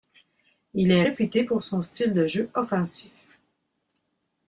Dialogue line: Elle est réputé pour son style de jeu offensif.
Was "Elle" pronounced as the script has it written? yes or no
no